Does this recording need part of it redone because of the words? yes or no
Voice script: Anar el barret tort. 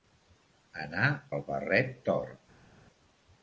no